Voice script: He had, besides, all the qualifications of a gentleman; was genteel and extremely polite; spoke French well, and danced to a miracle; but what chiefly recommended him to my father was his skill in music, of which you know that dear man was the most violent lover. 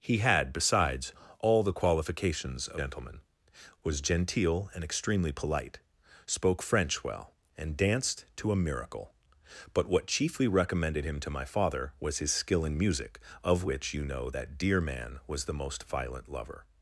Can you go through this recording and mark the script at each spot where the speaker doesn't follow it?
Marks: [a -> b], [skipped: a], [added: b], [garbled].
He had, besides, all the qualifications of [skipped: a] gentleman; was genteel and extremely polite; spoke French well, and danced to a miracle; but what chiefly recommended him to my father was his skill in music, of which you know that dear man was the most violent lover.